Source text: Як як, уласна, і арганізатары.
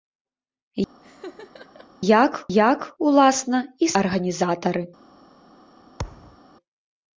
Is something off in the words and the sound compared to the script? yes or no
yes